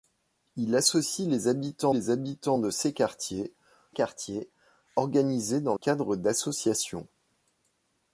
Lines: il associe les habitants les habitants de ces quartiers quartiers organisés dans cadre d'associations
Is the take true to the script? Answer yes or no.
yes